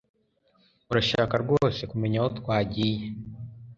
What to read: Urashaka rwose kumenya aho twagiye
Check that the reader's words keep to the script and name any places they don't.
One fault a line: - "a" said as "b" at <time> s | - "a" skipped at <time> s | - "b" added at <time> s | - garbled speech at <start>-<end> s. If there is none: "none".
none